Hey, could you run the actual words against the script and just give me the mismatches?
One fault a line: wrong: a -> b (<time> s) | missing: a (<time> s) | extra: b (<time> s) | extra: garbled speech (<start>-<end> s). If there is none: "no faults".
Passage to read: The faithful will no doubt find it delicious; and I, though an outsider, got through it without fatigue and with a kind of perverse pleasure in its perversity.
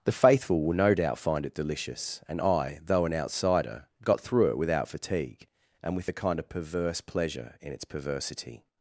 no faults